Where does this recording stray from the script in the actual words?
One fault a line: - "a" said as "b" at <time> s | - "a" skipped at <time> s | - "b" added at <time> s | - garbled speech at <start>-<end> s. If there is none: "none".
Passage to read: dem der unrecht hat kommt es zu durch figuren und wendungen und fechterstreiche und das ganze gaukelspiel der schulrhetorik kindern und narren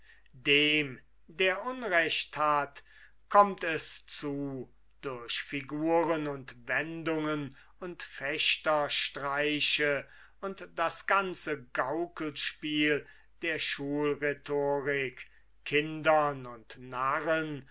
none